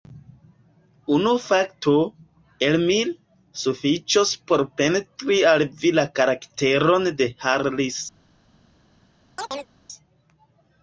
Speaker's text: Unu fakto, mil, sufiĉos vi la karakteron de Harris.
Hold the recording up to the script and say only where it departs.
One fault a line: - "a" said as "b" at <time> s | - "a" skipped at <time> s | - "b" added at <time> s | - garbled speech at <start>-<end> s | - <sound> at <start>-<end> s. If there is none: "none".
- "el" added at 2.7 s
- "por pentri al" added at 4.5 s
- chirp at 9.4-9.7 s